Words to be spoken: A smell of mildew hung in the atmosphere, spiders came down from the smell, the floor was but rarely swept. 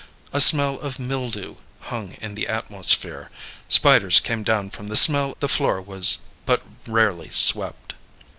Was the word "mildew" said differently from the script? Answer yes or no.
no